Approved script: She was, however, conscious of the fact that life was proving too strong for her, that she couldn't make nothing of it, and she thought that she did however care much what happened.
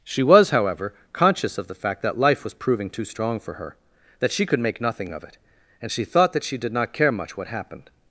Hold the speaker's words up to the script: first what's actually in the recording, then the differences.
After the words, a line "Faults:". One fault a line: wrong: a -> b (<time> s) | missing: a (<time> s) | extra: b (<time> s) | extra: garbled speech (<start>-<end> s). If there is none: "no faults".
She was, however, conscious of the fact that life was proving too strong for her, that she could make nothing of it, and she thought that she did not care much what happened.
Faults:
wrong: couldn't -> could (4.5 s)
wrong: however -> not (6.7 s)